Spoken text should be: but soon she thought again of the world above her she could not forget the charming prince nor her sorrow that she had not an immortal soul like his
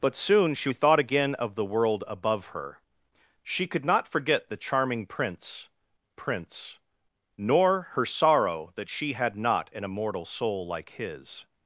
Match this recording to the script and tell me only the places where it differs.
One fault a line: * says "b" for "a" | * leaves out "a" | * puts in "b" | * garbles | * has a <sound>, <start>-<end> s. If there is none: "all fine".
* puts in "prince"